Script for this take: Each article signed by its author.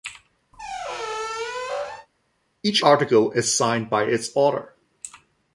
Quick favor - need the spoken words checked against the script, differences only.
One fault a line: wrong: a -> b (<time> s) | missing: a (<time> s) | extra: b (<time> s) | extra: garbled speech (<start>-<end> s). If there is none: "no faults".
extra: is (3.3 s)